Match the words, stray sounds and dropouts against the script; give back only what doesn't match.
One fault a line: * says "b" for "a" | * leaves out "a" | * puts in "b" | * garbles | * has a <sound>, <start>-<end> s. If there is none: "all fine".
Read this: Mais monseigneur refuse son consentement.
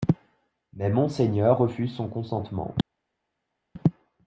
all fine